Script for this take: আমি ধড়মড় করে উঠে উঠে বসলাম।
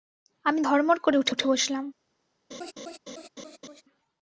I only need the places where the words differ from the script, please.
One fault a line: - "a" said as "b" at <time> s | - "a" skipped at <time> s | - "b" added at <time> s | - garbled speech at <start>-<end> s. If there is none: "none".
none